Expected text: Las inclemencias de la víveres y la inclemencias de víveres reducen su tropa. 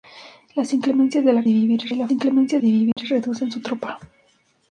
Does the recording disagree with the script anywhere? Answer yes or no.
no